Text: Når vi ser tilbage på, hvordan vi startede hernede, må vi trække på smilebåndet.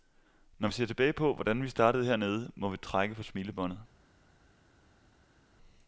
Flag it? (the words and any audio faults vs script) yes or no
no